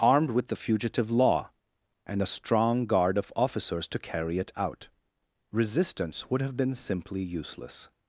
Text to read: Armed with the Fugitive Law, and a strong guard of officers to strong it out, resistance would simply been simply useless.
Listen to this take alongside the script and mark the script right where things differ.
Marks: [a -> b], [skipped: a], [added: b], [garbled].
Armed with the Fugitive Law, and a strong guard of officers to [strong -> carry] it out, resistance would [simply -> have] been simply useless.